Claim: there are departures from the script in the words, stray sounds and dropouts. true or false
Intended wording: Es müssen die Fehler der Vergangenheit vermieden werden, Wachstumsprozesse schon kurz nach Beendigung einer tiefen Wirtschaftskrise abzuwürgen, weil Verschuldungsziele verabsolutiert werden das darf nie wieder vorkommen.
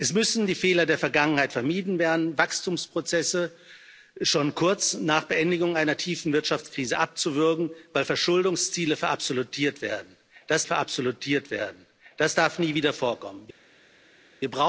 true